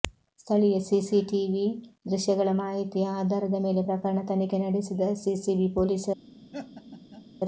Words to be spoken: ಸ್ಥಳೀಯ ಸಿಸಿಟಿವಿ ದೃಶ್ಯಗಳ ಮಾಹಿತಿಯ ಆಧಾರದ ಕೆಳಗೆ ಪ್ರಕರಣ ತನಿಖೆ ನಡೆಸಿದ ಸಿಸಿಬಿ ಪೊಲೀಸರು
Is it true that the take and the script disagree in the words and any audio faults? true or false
true